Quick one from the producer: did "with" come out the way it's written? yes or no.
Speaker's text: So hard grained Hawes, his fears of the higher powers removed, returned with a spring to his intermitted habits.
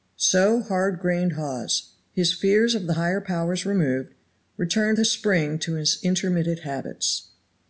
no